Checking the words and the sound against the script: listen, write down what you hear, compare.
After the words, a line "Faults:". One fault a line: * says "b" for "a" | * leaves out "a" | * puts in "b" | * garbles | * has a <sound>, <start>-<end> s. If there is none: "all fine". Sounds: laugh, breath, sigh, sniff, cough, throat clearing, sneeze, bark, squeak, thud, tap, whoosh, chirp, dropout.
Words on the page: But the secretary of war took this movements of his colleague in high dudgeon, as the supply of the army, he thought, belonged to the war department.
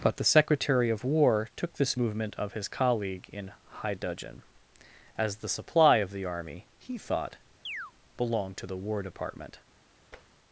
But the secretary of war took this movement of his colleague in high dudgeon, as the supply of the army, he thought, belonged to the war department.
Faults:
* says "movement" for "movements"
* has a chirp, 7.7-7.9 s
* has a tap, 10.1-10.3 s